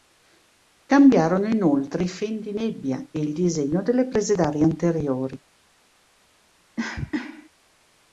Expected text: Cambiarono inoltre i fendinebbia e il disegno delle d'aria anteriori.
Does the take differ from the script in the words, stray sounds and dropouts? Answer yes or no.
yes